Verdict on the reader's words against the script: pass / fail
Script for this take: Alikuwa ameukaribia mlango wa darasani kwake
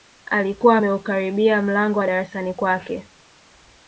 pass